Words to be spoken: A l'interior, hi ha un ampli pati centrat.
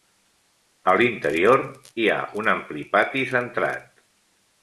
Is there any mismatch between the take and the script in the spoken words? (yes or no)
no